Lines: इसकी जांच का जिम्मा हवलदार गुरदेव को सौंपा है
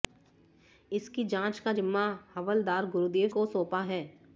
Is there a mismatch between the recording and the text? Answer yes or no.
no